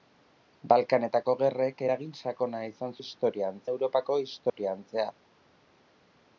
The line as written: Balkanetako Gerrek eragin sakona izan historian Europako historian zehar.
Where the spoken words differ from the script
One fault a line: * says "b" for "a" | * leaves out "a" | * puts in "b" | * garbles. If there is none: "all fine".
all fine